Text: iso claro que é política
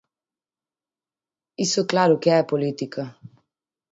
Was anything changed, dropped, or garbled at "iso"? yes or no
no